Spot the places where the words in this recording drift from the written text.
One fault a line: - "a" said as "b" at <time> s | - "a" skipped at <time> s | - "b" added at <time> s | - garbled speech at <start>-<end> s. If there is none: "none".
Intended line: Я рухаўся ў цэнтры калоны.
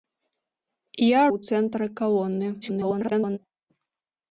- "рухаўся" skipped at 1.2 s
- garbled speech at 2.6-3.4 s